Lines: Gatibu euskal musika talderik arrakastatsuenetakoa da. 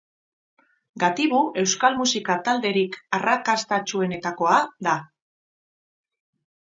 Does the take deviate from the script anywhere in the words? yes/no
no